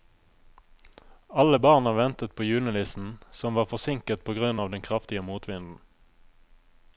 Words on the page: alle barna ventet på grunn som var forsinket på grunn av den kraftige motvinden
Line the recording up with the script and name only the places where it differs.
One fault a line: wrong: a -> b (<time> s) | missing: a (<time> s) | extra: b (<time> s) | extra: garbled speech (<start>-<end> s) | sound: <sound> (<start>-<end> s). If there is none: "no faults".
wrong: grunn -> julenissen (2.4 s)